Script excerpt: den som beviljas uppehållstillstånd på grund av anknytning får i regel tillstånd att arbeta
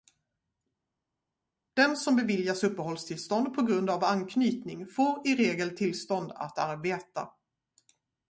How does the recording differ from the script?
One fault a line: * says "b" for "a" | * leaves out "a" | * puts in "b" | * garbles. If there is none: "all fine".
all fine